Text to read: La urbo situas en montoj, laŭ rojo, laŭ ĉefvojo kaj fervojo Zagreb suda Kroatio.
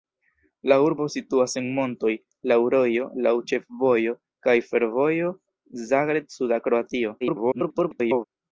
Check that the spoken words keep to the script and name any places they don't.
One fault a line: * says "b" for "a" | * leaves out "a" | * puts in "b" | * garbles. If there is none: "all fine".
* garbles